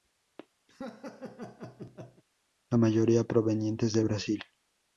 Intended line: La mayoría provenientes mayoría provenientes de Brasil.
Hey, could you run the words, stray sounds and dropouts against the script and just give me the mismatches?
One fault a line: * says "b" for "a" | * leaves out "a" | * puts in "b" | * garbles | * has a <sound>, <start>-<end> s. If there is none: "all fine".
* has a laugh, 0.7-2.2 s
* leaves out "mayoría provenientes"